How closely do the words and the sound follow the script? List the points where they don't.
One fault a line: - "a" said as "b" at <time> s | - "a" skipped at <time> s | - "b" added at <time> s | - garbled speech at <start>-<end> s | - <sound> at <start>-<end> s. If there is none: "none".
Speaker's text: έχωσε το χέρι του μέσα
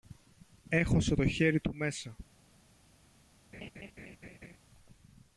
- laugh at 3.5-4.6 s